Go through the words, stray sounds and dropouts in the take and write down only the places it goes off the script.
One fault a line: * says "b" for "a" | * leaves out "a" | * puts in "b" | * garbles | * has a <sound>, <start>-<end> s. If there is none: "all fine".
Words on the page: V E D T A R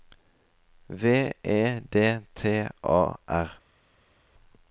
all fine